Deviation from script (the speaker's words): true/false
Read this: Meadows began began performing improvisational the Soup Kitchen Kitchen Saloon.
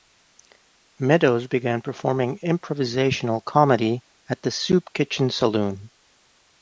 true